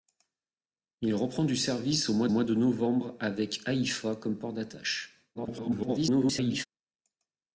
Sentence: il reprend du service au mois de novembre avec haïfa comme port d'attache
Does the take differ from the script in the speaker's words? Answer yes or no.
yes